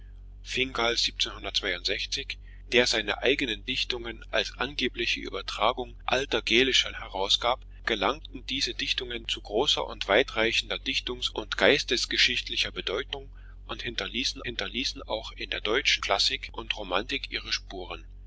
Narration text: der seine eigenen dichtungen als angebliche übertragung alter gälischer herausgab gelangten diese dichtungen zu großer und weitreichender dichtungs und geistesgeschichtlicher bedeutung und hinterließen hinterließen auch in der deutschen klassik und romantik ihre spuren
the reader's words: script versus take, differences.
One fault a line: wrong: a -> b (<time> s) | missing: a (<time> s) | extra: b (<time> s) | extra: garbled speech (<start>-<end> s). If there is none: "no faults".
no faults